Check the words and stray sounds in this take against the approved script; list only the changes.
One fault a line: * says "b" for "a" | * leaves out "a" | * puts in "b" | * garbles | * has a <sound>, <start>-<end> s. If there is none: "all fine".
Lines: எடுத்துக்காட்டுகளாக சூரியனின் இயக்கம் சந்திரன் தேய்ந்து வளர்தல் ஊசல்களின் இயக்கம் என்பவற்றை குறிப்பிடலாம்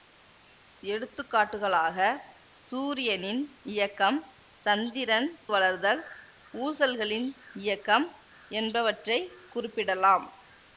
* leaves out "தேய்ந்து"